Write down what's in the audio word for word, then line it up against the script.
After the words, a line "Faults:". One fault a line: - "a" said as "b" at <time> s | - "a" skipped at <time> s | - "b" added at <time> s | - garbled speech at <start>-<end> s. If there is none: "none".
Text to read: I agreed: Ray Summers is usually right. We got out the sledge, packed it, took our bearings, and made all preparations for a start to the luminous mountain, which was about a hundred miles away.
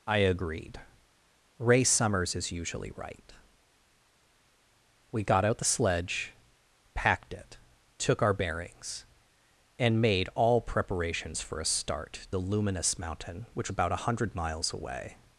I agreed: Ray Summers is usually right. We got out the sledge, packed it, took our bearings, and made all preparations for a start the luminous mountain, which about a hundred miles away.
Faults:
- "to" skipped at 12.3 s
- "was" skipped at 13.7 s